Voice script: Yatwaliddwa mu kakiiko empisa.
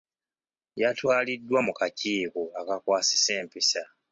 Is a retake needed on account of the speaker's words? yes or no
yes